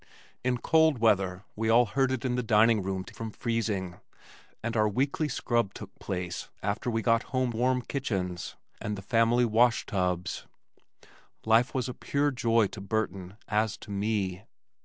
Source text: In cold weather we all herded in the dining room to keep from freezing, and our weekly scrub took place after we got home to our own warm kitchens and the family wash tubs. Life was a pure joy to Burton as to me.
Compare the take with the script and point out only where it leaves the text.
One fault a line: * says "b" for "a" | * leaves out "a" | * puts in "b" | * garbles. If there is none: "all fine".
* leaves out "keep"
* leaves out "to our own"